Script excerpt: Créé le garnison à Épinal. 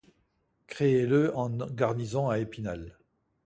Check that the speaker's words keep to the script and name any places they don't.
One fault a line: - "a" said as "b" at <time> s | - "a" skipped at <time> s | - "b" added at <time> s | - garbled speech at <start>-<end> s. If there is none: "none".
- "en" added at 1.3 s